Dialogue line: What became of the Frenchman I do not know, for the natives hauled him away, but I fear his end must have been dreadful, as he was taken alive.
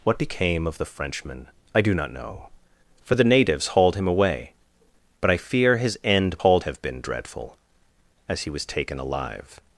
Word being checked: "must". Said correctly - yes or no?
no